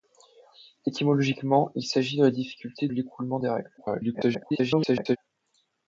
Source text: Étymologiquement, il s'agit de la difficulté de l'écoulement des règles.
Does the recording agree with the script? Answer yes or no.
no